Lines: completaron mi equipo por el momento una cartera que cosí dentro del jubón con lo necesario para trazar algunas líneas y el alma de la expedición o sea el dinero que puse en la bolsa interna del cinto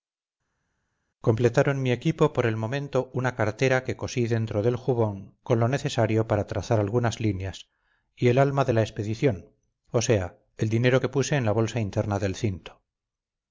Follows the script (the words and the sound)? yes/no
yes